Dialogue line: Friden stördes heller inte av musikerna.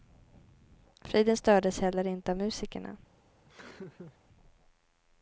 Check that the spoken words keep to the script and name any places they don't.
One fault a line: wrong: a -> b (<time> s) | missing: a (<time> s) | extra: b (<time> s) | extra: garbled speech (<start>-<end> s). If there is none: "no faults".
no faults